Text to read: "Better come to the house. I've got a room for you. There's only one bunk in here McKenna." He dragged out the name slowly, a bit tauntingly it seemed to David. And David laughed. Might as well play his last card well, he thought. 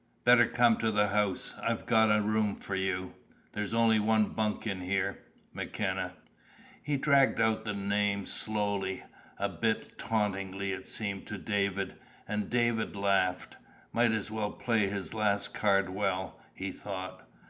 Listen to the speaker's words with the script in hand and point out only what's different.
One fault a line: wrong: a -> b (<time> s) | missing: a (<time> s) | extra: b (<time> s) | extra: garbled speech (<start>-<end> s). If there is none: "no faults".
no faults